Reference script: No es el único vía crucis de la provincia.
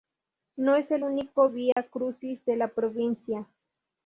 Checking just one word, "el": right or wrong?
right